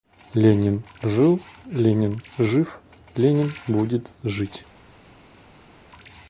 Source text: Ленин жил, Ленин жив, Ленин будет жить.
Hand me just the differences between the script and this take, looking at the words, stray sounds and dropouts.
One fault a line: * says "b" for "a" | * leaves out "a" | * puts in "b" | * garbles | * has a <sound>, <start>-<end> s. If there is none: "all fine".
all fine